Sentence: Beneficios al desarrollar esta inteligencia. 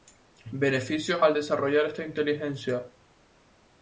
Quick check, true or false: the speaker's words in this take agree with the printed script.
true